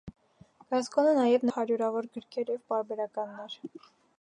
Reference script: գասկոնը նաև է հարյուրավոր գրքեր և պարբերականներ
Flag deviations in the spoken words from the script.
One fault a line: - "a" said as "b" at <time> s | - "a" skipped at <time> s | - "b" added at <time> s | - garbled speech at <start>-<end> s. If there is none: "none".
none